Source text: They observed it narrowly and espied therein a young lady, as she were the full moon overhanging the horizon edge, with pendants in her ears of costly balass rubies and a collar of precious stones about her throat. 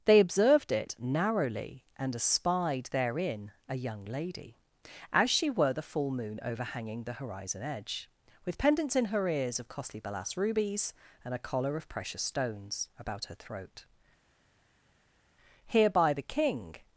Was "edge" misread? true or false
false